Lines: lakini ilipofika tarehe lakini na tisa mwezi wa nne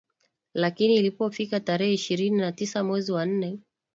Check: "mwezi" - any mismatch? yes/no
no